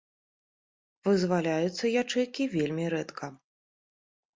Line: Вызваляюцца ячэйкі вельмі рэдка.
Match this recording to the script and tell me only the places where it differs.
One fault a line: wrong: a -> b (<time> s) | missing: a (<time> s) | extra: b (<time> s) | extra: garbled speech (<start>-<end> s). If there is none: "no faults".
no faults